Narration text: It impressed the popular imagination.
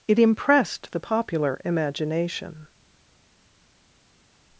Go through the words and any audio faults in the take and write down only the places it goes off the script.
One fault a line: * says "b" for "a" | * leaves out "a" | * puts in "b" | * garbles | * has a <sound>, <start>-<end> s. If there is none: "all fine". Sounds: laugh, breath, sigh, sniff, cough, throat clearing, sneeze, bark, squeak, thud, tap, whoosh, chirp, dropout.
all fine